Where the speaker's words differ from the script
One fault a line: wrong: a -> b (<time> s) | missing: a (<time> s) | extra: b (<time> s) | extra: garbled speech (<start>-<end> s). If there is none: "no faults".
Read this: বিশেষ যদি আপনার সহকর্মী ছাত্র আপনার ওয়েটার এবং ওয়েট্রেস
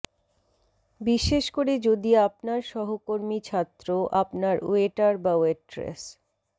extra: করে (1.6 s)
wrong: এবং -> বা (5.2 s)